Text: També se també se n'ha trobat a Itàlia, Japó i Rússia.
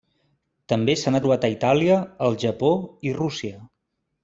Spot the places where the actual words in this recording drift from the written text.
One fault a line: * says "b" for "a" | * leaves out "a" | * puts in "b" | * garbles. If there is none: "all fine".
* leaves out "també se"
* puts in "el"